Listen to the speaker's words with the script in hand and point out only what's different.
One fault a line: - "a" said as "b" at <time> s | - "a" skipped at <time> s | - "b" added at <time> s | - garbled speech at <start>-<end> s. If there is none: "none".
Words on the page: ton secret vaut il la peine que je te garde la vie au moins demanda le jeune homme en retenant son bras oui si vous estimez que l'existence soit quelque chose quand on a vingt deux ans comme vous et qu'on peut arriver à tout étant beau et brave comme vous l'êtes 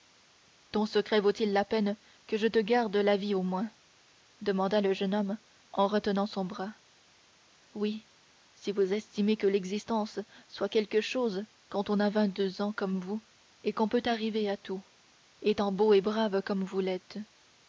none